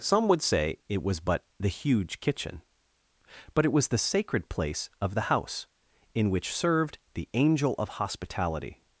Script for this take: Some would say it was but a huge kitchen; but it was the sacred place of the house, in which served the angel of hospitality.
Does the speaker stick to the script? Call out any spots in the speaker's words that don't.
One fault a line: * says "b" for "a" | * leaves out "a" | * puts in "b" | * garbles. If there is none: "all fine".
* says "the" for "a"